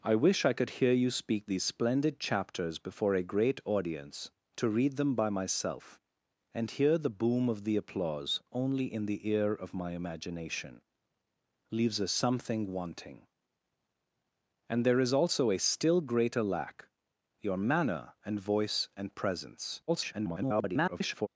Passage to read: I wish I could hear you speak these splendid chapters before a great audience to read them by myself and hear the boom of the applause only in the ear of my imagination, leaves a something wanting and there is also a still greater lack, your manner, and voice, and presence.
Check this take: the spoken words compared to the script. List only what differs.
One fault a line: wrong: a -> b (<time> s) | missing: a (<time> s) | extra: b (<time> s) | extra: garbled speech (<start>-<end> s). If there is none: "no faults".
extra: garbled speech (19.9-21.3 s)